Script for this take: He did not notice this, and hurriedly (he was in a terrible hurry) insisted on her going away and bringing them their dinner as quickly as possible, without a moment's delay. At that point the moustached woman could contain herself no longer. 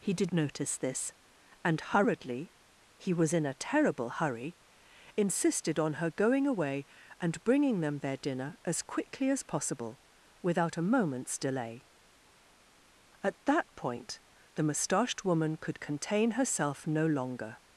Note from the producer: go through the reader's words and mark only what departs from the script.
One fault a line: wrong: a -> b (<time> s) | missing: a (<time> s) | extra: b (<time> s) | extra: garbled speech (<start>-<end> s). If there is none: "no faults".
missing: not (0.3 s)